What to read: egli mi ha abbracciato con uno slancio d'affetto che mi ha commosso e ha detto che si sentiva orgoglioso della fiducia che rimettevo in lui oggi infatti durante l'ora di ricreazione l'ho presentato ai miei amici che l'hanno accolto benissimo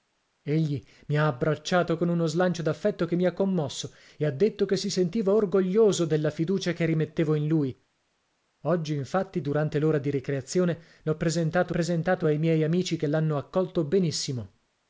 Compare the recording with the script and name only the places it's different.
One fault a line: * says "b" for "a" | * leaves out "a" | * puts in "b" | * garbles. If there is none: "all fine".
* puts in "presentato"